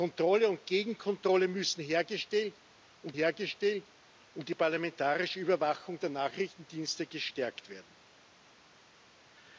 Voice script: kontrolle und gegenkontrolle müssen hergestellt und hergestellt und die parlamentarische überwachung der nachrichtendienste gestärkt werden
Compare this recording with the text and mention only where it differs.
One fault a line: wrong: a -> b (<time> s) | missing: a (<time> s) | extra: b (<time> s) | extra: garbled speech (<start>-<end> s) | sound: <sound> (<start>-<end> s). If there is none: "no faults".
no faults